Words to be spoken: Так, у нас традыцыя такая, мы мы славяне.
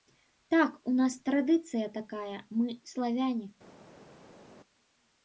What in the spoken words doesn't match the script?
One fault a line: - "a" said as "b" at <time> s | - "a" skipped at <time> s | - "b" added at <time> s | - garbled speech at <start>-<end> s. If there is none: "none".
- "мы" skipped at 2.8 s